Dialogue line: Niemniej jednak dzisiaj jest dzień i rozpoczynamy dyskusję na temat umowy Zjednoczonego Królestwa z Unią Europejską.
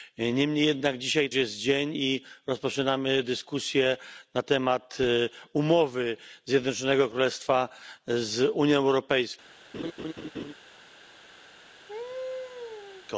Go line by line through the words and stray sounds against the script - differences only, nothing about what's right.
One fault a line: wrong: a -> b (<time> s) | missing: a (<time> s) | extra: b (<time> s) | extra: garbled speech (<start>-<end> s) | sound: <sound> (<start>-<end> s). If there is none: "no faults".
sound: laugh (9.7-10.5 s)
sound: laugh (11.9-13.1 s)